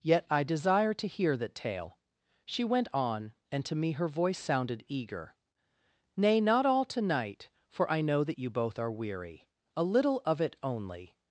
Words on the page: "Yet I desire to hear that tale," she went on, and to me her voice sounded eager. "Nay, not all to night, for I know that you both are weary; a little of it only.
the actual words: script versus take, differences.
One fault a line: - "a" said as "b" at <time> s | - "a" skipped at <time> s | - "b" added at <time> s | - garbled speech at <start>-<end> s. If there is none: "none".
none